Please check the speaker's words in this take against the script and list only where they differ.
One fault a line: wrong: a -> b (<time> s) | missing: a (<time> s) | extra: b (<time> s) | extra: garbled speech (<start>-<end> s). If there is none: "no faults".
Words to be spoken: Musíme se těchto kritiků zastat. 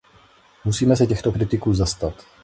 no faults